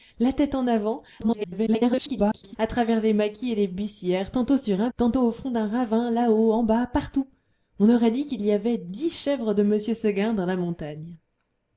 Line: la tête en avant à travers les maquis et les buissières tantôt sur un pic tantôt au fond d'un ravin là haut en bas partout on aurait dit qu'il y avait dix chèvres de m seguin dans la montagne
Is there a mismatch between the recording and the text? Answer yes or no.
yes